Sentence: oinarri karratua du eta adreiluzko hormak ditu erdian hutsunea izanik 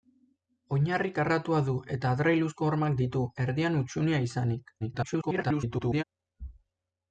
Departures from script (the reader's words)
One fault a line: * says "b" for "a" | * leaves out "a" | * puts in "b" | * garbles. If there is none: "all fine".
* garbles